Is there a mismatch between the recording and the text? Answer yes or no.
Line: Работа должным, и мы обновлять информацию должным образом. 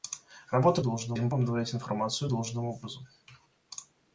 no